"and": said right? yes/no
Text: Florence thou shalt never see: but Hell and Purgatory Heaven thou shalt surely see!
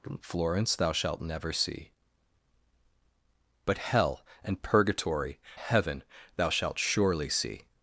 yes